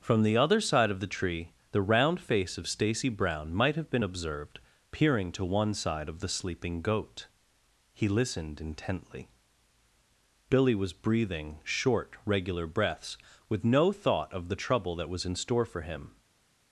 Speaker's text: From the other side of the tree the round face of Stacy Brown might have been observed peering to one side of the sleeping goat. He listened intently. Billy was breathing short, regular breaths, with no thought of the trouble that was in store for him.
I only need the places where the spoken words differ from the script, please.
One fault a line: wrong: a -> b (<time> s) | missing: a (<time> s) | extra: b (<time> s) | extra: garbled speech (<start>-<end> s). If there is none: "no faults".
no faults